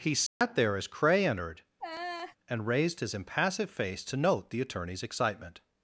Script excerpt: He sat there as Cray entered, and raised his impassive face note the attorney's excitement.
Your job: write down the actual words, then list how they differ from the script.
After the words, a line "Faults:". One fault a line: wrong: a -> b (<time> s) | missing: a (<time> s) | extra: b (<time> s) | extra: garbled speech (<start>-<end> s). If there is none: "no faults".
He sat there as Cray entered, and raised his impassive face to note the attorney's excitement.
Faults:
extra: to (4.0 s)